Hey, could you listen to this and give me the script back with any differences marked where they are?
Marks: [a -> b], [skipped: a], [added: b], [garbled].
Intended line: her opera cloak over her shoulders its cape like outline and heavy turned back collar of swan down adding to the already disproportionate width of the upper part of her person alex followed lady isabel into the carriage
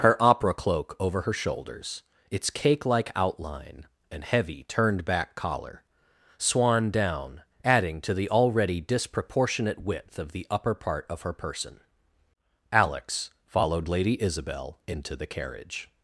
her opera cloak over her shoulders its [cape -> cake] like outline and heavy turned back collar [skipped: of] swan down adding to the already disproportionate width of the upper part of her person alex followed lady isabel into the carriage